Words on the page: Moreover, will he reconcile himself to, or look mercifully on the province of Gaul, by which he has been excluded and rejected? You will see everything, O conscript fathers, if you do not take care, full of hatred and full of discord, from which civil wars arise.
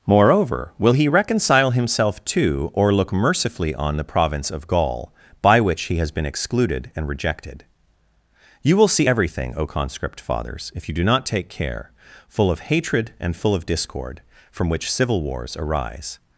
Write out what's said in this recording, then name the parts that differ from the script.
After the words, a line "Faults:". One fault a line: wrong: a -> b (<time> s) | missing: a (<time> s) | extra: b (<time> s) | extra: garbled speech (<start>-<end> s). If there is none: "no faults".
Moreover, will he reconcile himself to, or look mercifully on the province of Gaul, by which he has been excluded and rejected? You will see everything, O conscript fathers, if you do not take care, full of hatred and full of discord, from which civil wars arise.
Faults:
no faults